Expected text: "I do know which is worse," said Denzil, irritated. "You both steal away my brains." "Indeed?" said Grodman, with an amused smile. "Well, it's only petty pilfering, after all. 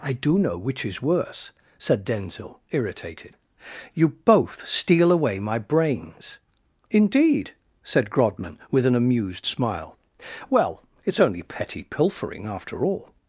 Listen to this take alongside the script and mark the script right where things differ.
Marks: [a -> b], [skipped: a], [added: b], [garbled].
"I do know which is worse," said Denzil, irritated. "You both steal away my brains." "Indeed?" said Grodman, with an amused smile. "Well, it's only petty pilfering, after all.